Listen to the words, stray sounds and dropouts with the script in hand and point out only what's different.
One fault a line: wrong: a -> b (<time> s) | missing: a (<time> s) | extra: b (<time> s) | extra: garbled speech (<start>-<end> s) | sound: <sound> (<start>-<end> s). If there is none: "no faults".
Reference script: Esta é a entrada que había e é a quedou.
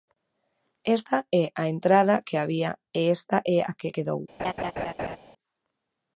extra: esta (3.1 s)
extra: que (3.8 s)
sound: laugh (4.4-5.2 s)